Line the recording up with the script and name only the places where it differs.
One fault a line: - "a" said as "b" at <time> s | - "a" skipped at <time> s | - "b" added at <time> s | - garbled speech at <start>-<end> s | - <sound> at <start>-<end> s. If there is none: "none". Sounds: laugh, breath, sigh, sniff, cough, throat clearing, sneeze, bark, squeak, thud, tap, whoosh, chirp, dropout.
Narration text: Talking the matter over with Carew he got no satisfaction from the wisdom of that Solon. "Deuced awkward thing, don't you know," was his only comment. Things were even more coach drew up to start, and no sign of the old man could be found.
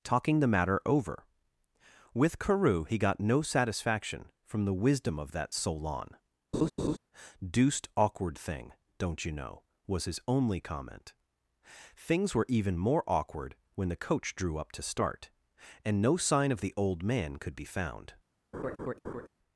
- laugh at 6.5-7.0 s
- "awkward when the" added at 13.1 s
- laugh at 18.5-19.3 s